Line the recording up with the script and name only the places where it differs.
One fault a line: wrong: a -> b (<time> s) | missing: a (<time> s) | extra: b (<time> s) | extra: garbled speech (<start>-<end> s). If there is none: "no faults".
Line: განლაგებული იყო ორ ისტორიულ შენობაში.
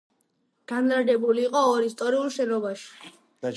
no faults